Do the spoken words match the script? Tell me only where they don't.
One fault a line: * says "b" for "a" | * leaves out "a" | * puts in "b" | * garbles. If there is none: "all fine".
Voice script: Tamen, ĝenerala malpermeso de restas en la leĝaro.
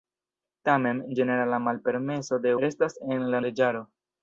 all fine